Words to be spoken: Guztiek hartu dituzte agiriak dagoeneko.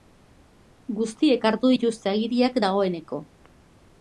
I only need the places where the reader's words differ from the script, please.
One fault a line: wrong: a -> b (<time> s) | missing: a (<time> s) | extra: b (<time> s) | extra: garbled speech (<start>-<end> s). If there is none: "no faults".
no faults